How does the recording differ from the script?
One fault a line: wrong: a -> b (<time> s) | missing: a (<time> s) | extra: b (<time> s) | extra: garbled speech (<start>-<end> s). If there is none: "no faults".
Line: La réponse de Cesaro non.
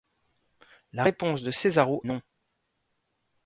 no faults